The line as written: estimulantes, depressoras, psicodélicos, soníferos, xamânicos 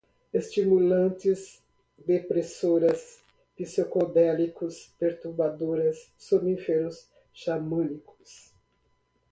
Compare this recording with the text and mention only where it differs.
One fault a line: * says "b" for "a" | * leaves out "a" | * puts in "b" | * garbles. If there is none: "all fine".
* puts in "perturbadoras"